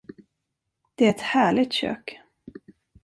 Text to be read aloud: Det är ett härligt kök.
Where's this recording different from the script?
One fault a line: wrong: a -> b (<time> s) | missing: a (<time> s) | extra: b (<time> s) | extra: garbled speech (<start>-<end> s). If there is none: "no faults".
no faults